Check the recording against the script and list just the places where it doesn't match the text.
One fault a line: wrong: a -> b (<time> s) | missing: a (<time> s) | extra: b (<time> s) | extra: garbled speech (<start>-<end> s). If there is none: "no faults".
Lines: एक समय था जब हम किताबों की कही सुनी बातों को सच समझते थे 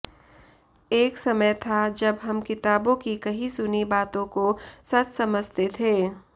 no faults